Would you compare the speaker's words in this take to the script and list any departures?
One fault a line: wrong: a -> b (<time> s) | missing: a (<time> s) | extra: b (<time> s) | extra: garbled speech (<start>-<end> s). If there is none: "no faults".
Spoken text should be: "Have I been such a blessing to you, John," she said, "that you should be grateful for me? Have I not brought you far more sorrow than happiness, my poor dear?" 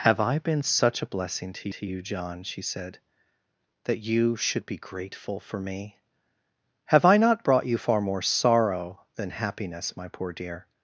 extra: to (1.7 s)